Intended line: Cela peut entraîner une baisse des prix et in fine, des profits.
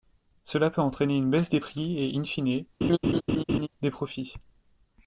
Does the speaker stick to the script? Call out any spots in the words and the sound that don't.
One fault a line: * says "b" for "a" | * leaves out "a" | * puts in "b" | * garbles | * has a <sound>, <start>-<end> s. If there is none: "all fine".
* has a laugh, 2.8-3.7 s